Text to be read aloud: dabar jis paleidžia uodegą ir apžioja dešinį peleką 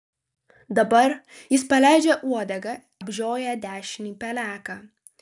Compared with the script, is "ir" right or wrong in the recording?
wrong